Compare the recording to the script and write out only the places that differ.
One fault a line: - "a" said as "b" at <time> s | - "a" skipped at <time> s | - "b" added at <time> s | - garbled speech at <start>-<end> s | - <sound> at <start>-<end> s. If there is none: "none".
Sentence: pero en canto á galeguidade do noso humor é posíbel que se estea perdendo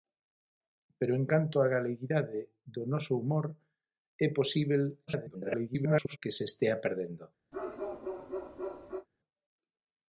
- garbled speech at 5.1-6.2 s
- bark at 7.5-9.1 s